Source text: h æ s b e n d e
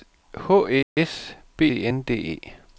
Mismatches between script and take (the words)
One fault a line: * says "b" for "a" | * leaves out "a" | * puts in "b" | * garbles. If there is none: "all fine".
all fine